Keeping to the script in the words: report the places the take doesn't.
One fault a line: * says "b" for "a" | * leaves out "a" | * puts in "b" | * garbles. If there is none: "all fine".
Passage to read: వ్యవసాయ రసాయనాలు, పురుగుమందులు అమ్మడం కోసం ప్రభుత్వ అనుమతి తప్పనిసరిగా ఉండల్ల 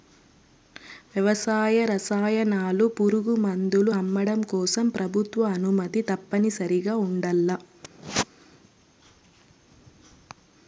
all fine